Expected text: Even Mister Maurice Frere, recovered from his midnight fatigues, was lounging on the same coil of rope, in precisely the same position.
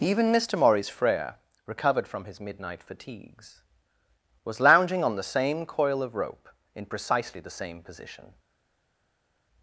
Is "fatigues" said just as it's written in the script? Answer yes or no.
yes